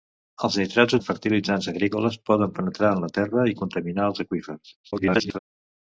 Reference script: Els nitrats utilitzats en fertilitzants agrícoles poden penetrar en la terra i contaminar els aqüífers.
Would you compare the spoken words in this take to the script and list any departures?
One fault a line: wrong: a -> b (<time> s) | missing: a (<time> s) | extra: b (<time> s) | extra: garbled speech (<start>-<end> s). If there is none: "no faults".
missing: utilitzats (0.9 s)
extra: garbled speech (4.8-5.4 s)